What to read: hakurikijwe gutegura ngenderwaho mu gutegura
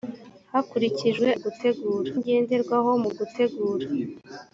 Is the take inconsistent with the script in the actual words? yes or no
no